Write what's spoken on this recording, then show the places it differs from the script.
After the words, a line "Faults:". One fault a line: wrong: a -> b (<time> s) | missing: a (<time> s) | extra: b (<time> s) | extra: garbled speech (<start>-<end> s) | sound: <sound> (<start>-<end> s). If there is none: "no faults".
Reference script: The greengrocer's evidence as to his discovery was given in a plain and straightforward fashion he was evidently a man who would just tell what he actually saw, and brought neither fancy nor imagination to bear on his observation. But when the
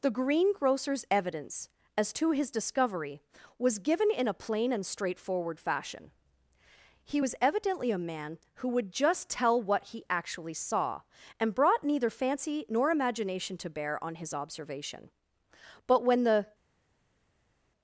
The greengrocer's evidence as to his discovery was given in a plain and straightforward fashion he was evidently a man who would just tell what he actually saw, and brought neither fancy nor imagination to bear on his observation. But when the
Faults:
no faults